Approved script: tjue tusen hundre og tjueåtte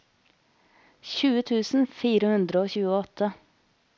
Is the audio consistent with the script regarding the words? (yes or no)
no